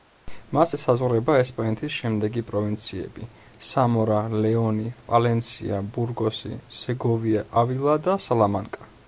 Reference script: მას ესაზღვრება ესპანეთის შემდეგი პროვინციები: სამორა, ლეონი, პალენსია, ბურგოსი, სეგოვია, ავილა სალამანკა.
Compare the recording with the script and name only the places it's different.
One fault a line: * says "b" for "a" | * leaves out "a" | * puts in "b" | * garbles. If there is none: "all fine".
* puts in "და"